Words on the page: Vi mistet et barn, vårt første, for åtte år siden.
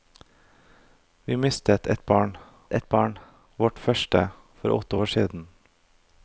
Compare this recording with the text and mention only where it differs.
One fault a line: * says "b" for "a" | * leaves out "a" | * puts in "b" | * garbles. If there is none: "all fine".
* puts in "et barn"